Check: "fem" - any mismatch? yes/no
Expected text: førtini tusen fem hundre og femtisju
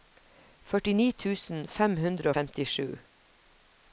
no